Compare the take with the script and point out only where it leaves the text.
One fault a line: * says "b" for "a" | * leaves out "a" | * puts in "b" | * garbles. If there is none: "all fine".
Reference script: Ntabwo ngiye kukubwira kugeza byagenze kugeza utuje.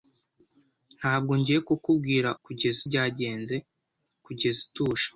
all fine